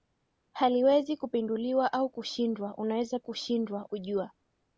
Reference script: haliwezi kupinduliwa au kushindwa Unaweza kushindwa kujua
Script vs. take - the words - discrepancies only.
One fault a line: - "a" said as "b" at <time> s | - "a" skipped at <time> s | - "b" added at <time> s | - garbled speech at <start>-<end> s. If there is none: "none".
none